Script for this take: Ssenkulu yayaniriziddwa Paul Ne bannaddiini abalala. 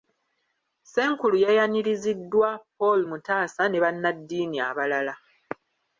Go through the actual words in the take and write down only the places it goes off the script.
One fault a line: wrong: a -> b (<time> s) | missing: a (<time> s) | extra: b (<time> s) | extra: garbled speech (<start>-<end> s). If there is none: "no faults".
extra: Mutaasa (3.1 s)